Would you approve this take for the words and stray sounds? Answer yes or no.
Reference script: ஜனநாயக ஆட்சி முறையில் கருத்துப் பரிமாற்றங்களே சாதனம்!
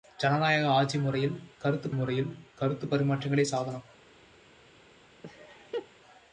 no